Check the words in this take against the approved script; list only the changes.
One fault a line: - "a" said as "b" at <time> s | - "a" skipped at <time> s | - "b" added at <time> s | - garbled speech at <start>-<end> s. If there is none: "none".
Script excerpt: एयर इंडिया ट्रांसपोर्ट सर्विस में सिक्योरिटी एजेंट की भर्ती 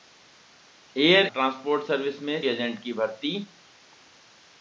- "इंडिया" skipped at 1.3 s
- "सिक्योरिटी" skipped at 2.4 s